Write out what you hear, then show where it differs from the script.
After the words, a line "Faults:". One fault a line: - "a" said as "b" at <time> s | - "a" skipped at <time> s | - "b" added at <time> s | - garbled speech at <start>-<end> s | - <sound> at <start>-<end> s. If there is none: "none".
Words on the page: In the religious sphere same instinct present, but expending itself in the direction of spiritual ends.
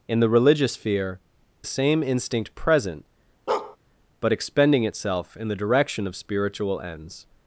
In the religious sphere same instinct present, but expending itself in the direction of spiritual ends.
Faults:
- bark at 3.5-3.8 s